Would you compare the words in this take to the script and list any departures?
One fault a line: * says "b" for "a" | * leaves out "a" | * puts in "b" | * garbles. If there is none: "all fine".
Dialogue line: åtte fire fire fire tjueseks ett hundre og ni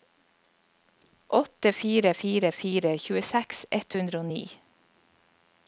all fine